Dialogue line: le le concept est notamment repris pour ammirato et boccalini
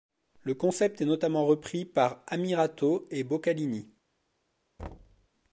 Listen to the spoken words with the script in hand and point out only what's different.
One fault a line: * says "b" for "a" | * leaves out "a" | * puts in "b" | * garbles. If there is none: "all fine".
* leaves out "le"
* says "par" for "pour"